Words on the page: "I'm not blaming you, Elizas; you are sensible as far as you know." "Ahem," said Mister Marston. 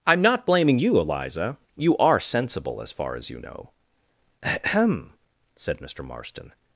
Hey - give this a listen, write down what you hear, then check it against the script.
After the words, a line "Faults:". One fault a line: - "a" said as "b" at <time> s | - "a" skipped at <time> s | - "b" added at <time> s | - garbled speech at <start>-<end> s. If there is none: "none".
"I'm not blaming you, Eliza; you are sensible as far as you know." "Ahem," said Mister Marston.
Faults:
- "Elizas" said as "Eliza" at 1.0 s